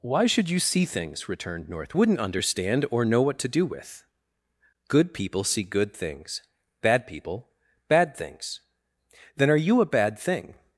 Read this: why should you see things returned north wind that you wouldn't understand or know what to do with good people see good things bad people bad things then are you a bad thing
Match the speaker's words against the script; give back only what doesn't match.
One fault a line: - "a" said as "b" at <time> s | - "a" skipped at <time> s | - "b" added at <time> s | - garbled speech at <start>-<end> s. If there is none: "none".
- "wind that you" skipped at 1.9 s